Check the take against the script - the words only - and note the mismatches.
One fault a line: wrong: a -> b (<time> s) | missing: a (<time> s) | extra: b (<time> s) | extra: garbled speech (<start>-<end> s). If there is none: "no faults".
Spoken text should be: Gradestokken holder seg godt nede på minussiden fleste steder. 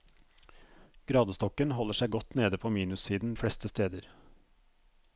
no faults